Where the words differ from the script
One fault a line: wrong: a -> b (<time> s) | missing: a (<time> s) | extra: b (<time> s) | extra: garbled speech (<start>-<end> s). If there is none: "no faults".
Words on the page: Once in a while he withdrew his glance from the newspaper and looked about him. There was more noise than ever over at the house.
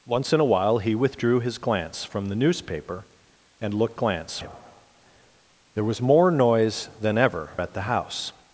wrong: about -> glance (3.9 s)
missing: over (7.6 s)